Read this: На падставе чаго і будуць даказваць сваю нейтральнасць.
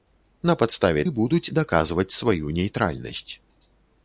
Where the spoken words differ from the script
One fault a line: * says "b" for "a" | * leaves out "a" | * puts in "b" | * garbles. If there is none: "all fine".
* leaves out "чаго"